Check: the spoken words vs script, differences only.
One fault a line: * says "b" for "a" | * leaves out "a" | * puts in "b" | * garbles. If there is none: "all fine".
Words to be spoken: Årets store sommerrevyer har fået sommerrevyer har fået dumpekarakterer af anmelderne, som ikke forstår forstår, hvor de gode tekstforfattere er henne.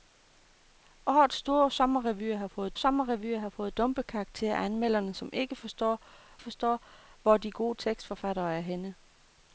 all fine